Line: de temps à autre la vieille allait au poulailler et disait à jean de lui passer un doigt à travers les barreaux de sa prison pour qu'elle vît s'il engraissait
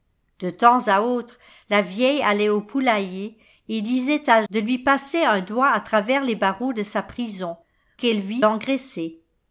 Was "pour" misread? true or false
true